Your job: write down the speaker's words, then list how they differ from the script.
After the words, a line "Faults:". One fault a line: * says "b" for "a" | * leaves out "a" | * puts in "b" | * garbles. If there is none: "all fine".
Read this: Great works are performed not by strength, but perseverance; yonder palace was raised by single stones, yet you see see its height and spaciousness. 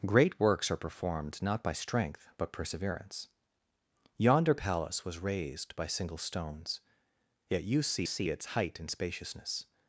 Great works are performed not by strength, but perseverance; yonder palace was raised by single stones, yet you see see its height and spaciousness.
Faults:
all fine